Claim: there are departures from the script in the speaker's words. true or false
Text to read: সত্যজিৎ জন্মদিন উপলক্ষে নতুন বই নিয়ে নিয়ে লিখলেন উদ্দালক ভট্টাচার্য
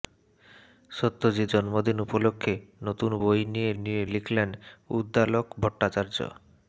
false